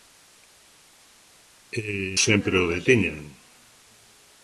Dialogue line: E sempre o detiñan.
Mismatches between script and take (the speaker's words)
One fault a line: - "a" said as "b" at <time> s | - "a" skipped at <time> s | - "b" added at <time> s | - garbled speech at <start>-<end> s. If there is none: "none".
none